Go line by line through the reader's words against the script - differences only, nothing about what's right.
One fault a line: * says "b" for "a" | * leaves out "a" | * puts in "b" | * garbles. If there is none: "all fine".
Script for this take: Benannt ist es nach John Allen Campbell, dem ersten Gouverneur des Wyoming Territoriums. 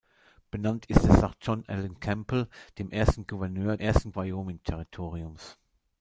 * says "ersten" for "des"